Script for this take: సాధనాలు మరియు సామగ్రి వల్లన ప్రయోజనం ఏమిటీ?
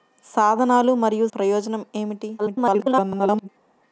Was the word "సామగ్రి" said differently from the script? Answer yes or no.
yes